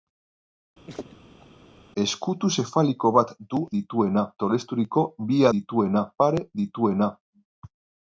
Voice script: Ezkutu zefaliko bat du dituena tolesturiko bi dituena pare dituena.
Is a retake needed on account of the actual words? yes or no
no